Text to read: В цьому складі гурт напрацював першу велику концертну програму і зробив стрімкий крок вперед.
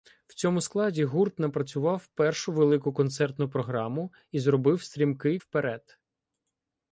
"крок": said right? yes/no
no